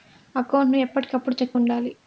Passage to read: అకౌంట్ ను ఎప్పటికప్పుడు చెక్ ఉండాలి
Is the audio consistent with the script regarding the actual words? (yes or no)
yes